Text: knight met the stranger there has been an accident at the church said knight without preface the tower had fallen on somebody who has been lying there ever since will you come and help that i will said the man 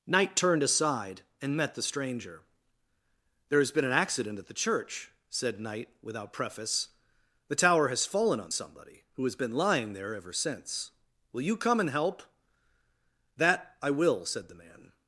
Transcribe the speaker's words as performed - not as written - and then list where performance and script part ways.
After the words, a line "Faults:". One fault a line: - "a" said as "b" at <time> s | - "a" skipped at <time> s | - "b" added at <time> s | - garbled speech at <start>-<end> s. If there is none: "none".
knight turned aside and met the stranger there has been an accident at the church said knight without preface the tower has fallen on somebody who has been lying there ever since will you come and help that i will said the man
Faults:
- "turned aside and" added at 0.3 s
- "had" said as "has" at 7.9 s